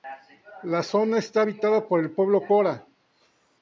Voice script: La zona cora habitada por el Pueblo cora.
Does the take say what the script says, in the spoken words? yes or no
no